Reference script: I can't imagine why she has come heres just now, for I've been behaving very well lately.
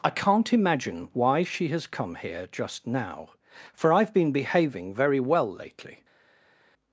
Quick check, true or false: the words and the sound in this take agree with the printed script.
false